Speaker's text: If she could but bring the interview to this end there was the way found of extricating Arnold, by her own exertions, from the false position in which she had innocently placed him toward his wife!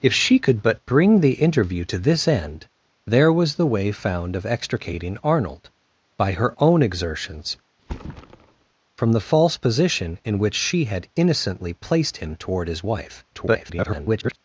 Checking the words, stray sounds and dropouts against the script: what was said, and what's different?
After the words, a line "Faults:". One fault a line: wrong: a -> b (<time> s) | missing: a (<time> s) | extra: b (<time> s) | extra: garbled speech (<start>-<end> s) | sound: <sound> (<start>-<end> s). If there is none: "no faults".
If she could but bring the interview to this end there was the way found of extricating Arnold, by her own exertions, from the false position in which she had innocently placed him toward his wife! [garbled]
Faults:
sound: thud (7.8-8.7 s)
extra: garbled speech (13.3-14.4 s)